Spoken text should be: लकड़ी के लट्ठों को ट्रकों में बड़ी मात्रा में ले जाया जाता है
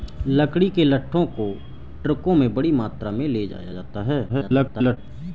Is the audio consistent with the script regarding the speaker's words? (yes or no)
no